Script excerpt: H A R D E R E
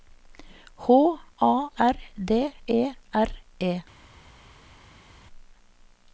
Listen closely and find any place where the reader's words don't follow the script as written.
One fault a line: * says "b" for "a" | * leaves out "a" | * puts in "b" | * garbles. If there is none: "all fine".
all fine